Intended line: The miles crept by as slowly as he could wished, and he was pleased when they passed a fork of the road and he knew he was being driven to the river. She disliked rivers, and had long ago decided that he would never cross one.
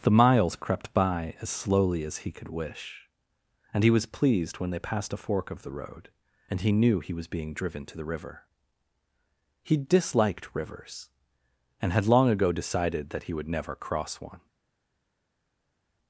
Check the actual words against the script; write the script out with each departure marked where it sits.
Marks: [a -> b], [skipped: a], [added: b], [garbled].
The miles crept by as slowly as he could [wished, -> wish] and he was pleased when they passed a fork of the road and he knew he was being driven to the river. [She -> He] disliked rivers, and had long ago decided that he would never cross one.